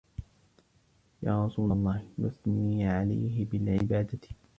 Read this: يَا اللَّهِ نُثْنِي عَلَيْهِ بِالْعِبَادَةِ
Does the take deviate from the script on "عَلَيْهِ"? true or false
false